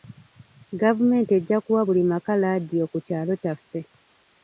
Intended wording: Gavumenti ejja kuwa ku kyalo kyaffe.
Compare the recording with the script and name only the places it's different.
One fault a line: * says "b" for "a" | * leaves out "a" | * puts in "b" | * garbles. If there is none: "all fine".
* puts in "buli maka laadiyo"